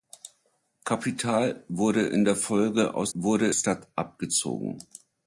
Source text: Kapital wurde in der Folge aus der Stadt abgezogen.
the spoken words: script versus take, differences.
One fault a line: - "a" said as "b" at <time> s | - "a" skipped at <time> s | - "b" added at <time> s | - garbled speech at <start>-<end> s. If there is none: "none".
- "der" said as "wurde" at 3.1 s